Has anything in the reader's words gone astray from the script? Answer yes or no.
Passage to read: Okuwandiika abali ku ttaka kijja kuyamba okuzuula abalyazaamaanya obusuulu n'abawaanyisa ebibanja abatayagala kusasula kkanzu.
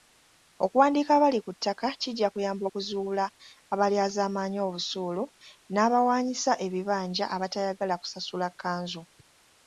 no